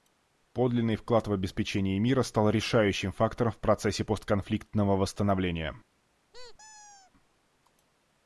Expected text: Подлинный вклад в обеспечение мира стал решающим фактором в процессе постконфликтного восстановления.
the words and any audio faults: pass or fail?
fail